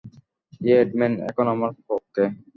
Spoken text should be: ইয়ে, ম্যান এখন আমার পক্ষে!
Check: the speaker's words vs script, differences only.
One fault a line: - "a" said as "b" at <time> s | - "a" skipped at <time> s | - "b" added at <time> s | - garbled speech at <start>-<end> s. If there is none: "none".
none